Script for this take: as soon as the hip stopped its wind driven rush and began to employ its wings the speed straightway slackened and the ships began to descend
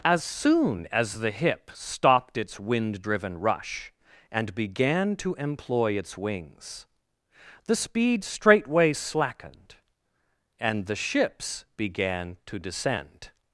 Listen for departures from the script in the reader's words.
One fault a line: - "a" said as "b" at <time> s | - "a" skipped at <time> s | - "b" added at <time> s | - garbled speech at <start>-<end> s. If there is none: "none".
none